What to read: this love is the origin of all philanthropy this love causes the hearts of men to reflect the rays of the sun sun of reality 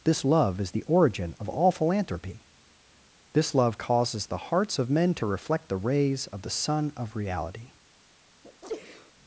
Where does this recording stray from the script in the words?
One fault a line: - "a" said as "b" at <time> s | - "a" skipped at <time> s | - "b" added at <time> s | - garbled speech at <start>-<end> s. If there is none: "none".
- "sun" skipped at 6.9 s